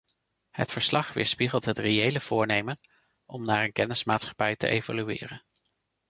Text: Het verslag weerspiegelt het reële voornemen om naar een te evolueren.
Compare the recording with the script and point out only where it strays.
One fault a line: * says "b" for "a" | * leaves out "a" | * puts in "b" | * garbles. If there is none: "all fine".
* puts in "kennismaatschappij"